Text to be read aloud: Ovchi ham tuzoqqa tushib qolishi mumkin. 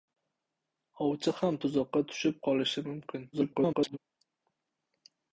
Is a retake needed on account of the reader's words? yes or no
yes